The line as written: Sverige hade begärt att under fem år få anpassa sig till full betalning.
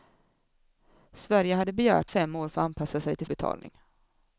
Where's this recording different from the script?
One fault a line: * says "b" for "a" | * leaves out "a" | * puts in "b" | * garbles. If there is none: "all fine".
* leaves out "att under"
* leaves out "full"